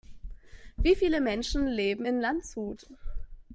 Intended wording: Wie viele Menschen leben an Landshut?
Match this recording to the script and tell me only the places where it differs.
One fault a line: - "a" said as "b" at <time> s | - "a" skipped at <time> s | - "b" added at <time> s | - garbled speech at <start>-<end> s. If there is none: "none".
- "an" said as "in" at 2.0 s